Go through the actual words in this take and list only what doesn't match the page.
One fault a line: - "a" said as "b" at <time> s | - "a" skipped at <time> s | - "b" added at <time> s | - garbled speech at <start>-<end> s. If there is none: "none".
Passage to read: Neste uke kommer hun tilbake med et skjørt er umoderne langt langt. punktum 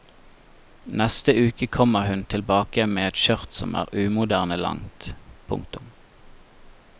- "som" added at 3.6 s
- "langt" skipped at 5.1 s